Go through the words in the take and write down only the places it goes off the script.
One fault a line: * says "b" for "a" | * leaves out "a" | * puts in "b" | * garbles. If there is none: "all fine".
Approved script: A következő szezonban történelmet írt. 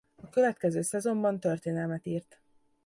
all fine